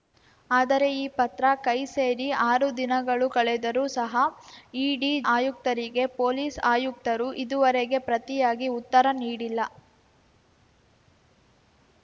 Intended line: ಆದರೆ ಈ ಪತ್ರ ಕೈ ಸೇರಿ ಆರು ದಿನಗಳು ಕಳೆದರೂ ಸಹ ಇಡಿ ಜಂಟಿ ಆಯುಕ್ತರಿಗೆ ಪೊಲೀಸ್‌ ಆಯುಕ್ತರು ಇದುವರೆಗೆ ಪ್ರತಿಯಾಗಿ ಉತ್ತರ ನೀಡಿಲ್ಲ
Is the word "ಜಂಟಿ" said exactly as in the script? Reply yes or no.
no